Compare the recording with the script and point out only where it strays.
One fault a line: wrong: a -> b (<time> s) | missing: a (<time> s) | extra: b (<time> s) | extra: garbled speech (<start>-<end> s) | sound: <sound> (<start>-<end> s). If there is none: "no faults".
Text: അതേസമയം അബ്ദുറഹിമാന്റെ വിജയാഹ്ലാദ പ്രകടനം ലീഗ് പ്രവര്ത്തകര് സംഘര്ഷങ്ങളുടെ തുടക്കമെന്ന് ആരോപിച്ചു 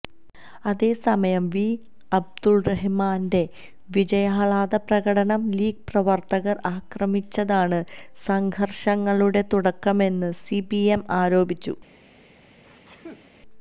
extra: വി (1.5 s)
extra: ആക്രമിച്ചതാണ് (6.7 s)
extra: സിപിഎം (10.4 s)
sound: sneeze (12.4-13.3 s)